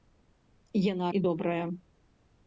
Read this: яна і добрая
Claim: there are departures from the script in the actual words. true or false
false